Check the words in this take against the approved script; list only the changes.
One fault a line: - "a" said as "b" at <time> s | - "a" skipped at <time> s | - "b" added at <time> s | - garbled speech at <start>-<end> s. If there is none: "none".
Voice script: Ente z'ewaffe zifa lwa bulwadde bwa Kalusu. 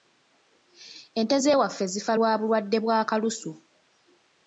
none